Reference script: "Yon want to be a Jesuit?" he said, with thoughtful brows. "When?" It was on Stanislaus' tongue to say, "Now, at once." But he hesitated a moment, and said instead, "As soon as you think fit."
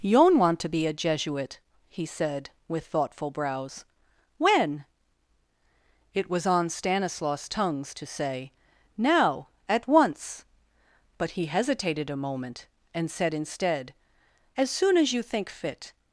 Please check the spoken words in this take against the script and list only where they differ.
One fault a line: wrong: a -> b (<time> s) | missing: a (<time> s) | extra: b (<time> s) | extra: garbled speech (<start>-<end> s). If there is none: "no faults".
wrong: tongue -> tongues (7.5 s)